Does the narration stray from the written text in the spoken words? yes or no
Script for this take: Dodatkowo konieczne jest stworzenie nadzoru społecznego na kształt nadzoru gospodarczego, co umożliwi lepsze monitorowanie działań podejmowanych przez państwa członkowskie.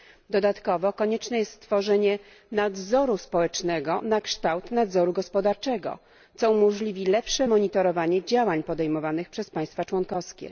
no